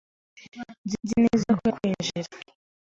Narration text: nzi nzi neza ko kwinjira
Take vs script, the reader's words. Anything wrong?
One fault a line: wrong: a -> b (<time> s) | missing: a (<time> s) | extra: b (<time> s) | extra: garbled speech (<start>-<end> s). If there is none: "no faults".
no faults